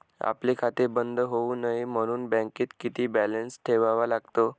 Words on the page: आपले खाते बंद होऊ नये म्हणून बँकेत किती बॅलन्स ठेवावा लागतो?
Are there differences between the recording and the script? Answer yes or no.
no